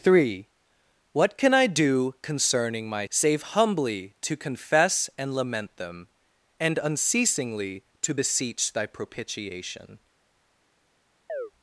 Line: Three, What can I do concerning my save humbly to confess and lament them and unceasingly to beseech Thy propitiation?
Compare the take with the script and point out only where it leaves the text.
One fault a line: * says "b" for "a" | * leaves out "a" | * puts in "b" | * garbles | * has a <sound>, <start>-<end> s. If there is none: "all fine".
* has a chirp, 11.3-11.5 s